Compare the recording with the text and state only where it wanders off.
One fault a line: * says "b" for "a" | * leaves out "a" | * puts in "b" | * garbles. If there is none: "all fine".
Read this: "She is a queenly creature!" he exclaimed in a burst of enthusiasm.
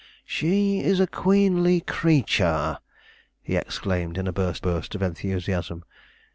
* puts in "burst"